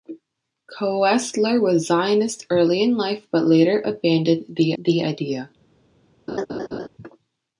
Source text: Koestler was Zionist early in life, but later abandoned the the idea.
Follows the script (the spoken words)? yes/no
yes